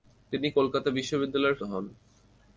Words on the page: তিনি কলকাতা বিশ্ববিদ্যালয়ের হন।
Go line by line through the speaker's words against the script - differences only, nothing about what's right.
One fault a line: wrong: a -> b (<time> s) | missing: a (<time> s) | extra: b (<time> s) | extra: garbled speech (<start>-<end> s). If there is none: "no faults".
no faults